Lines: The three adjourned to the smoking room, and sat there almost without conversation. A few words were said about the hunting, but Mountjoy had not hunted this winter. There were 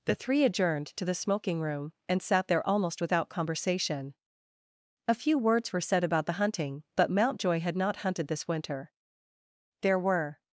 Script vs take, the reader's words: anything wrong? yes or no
no